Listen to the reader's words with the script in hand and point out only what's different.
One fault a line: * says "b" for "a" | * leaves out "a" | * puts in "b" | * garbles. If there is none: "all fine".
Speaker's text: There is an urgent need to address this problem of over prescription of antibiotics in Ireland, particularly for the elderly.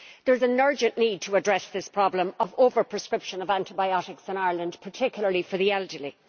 all fine